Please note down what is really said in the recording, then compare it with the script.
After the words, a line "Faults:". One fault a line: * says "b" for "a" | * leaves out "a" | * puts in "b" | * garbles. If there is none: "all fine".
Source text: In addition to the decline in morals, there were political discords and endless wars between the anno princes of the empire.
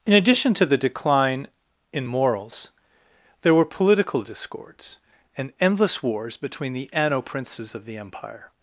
In addition to the decline in morals, there were political discords and endless wars between the anno princes of the empire.
Faults:
all fine